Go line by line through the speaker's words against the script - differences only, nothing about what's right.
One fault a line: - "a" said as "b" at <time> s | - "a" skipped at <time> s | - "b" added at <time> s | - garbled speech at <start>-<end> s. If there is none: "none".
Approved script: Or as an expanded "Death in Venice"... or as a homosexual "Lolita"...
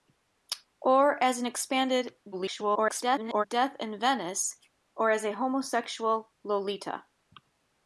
- garbled speech at 2.3-3.4 s